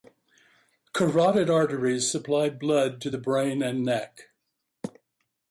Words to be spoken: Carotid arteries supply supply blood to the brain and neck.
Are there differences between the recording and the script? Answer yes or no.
yes